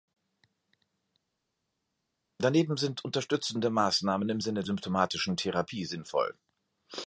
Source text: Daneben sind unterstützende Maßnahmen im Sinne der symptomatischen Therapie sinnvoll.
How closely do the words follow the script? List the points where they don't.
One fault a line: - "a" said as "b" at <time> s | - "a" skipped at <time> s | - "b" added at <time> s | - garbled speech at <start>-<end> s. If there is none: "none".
- "der" skipped at 4.6 s